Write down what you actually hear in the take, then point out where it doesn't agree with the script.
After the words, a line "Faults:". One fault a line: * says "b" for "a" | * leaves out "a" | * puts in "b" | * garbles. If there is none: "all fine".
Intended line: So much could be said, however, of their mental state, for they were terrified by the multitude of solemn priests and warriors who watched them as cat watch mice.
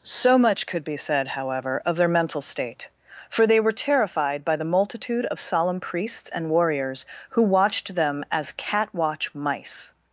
So much could be said, however, of their mental state, for they were terrified by the multitude of solemn priests and warriors who watched them as cat watch mice.
Faults:
all fine